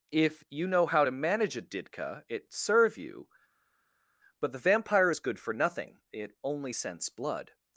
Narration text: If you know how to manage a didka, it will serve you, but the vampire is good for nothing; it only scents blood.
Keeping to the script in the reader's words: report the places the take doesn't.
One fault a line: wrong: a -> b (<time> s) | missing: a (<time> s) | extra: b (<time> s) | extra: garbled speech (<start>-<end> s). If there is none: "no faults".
missing: will (2.5 s)